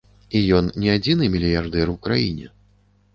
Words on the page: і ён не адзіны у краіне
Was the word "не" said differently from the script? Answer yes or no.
no